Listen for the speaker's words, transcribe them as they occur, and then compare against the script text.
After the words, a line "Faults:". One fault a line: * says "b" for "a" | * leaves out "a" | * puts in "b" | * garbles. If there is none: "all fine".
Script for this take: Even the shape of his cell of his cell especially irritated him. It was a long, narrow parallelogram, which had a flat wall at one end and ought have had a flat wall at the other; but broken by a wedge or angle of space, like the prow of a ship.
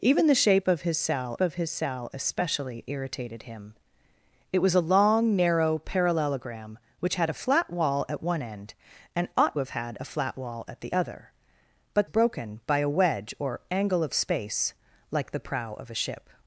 Even the shape of his cell of his cell especially irritated him. It was a long, narrow parallelogram, which had a flat wall at one end and ought have had a flat wall at the other; but broken by a wedge or angle of space, like the prow of a ship.
Faults:
all fine